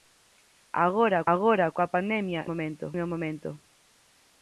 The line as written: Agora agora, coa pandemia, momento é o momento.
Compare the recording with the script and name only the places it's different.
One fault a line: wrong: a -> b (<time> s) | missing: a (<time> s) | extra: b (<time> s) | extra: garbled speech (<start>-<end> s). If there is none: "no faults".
no faults